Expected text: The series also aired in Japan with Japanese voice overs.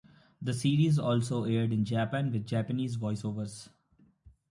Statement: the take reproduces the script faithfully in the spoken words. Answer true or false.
true